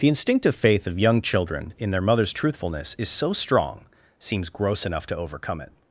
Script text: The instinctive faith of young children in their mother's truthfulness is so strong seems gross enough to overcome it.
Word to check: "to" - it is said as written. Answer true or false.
true